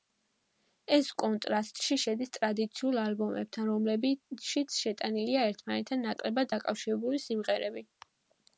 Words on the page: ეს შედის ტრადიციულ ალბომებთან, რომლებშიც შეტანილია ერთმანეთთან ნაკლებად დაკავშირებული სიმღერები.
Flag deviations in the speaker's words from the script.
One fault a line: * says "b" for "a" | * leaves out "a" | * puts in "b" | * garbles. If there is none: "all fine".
* puts in "კონტრასტში"